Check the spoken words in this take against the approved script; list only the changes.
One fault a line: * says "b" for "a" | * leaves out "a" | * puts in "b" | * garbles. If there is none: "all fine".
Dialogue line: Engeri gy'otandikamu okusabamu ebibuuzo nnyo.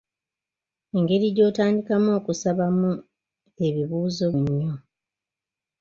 all fine